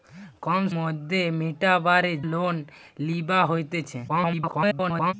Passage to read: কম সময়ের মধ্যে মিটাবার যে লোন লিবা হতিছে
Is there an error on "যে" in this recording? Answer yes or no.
yes